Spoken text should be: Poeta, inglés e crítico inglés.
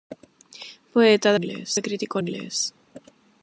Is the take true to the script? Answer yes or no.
yes